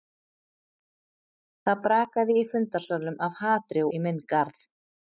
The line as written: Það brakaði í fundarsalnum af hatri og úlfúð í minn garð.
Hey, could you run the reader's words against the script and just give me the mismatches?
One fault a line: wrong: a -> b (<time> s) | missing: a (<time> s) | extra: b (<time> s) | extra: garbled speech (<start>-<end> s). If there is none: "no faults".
missing: og úlfúð (3.9 s)